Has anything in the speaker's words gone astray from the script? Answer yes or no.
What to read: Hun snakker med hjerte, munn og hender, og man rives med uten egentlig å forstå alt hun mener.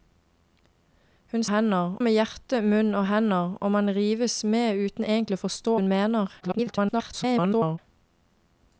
yes